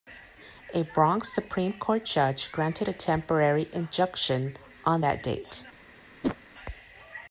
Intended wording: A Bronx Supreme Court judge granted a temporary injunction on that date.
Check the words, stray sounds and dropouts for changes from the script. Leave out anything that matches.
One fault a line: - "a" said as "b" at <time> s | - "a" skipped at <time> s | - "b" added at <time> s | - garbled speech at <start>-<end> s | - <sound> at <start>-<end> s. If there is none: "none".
- whoosh at 6.2-6.4 s